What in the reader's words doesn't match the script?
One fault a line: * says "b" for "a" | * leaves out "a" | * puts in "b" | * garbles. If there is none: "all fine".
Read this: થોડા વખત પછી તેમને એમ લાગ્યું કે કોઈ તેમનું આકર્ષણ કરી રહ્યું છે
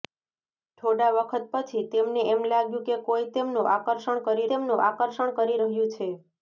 * puts in "તેમનું આકર્ષણ કરી"